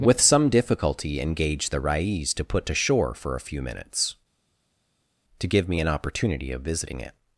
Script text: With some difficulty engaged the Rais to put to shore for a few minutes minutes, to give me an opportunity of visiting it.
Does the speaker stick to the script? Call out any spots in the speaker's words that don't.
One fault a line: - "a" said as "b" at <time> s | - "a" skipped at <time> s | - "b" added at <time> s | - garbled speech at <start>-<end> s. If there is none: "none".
- "minutes" skipped at 4.2 s